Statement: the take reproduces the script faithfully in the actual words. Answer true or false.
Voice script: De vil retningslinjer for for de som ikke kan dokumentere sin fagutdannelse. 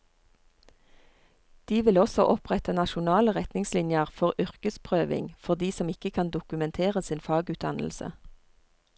false